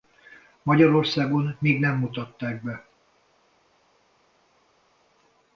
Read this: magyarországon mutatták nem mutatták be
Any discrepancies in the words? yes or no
yes